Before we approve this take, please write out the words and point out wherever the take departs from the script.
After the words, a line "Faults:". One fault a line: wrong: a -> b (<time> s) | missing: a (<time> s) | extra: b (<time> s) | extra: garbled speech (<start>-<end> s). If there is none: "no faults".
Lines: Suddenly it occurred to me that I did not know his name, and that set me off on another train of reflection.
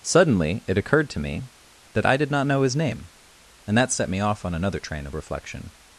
Suddenly it occurred to me that I did not know his name, and that set me off on another train of reflection.
Faults:
no faults